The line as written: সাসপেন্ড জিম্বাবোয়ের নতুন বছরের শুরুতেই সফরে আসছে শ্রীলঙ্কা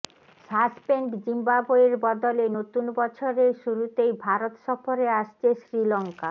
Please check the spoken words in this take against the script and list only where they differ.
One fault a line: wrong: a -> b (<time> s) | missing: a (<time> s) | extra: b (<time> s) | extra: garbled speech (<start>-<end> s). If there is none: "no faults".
extra: বদলে (2.0 s)
extra: ভারত (4.2 s)